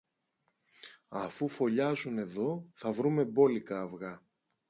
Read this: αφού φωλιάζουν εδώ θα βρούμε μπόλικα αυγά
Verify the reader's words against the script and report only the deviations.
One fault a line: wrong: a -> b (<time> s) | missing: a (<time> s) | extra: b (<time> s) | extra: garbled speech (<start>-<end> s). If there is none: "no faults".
no faults